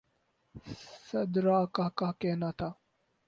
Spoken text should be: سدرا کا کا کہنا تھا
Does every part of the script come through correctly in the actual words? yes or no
yes